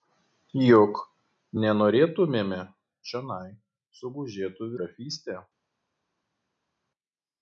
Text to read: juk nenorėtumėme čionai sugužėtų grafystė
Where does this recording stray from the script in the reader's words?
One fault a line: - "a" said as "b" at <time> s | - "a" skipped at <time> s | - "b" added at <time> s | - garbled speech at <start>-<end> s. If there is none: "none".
none